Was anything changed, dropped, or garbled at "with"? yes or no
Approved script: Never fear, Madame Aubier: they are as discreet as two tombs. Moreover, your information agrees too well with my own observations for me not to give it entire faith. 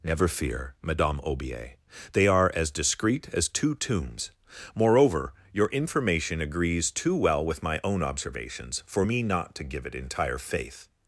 no